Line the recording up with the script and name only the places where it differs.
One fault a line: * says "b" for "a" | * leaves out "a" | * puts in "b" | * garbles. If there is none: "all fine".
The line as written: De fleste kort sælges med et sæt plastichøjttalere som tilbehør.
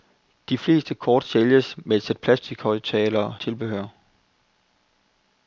* leaves out "som"